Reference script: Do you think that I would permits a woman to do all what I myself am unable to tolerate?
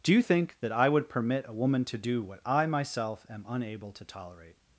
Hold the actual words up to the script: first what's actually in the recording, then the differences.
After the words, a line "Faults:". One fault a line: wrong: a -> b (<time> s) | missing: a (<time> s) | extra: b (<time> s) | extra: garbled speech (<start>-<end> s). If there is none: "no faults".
Do you think that I would permit a woman to do what I myself am unable to tolerate?
Faults:
wrong: permits -> permit (1.1 s)
missing: all (2.2 s)